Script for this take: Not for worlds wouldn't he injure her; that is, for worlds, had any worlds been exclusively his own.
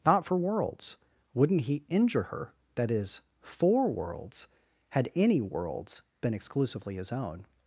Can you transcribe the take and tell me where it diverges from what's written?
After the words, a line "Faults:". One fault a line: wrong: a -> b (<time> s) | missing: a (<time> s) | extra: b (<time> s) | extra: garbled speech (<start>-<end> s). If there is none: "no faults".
Not for worlds wouldn't he injure her; that is, for worlds, had any worlds been exclusively his own.
Faults:
no faults